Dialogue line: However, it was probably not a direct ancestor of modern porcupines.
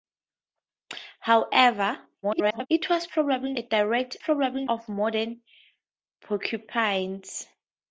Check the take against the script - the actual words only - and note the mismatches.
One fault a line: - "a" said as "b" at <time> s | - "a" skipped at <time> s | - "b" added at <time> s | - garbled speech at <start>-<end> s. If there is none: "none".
- garbled speech at 2.2-2.7 s
- "not" skipped at 3.5 s
- "ancestor" said as "probably" at 4.2 s